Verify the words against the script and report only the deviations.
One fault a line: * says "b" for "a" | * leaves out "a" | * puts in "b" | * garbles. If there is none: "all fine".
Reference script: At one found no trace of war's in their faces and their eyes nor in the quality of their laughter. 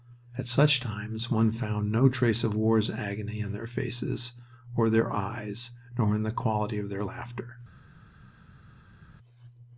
* puts in "such times"
* puts in "agony"
* says "or" for "and"